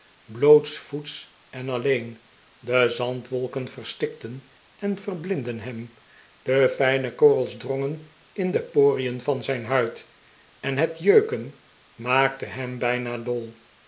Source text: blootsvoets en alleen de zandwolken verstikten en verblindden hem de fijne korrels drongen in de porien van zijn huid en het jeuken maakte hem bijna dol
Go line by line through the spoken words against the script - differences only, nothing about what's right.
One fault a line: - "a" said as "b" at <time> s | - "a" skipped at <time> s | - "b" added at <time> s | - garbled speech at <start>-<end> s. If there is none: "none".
none